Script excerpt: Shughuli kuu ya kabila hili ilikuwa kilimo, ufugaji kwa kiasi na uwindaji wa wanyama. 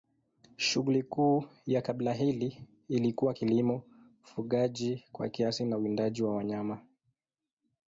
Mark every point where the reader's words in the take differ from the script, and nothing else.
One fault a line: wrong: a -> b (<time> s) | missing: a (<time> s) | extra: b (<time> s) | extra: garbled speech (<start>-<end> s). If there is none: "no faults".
no faults